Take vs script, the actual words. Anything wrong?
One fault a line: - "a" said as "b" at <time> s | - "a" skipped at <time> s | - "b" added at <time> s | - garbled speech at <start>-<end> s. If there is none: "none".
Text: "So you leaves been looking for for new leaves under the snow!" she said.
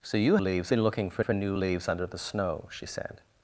none